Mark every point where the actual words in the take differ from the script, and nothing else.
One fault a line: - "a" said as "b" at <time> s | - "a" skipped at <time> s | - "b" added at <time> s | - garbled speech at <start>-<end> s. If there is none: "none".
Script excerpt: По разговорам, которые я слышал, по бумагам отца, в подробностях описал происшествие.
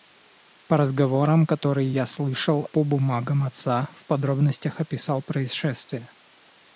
none